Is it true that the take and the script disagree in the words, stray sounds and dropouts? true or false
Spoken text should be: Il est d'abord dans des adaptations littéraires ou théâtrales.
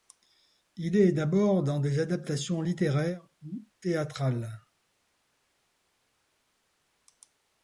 false